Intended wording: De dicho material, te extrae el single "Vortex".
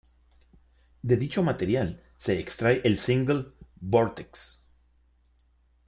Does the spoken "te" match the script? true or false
false